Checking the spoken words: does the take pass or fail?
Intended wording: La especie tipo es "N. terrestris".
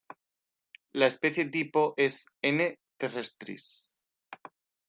pass